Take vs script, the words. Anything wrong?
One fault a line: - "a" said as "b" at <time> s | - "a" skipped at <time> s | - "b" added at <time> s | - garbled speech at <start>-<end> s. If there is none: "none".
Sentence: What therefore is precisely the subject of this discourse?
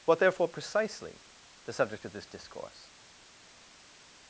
- "is" skipped at 0.5 s